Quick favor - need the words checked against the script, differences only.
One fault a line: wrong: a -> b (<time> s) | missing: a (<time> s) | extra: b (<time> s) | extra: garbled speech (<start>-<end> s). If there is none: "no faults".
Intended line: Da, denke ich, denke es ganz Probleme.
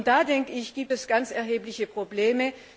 wrong: denke -> gibt (0.7 s)
extra: erhebliche (1.3 s)